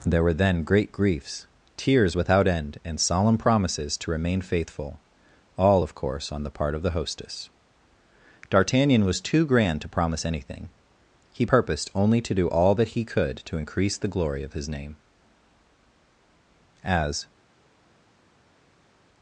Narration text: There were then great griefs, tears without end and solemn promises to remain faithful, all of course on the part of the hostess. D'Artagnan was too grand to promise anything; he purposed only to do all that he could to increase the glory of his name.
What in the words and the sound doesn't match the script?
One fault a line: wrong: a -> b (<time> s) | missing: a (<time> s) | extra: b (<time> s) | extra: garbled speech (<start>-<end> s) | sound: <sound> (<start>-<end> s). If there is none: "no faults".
extra: As (16.8 s)